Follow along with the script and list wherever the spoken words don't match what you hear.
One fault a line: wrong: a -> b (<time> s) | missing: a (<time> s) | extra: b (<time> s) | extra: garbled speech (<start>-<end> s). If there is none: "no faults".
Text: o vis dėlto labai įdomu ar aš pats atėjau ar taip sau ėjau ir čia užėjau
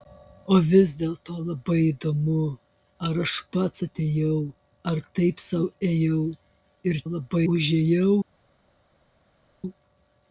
wrong: čia -> labai (7.1 s)